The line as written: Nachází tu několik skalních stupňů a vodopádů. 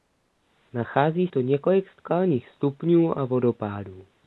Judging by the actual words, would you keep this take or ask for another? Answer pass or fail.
pass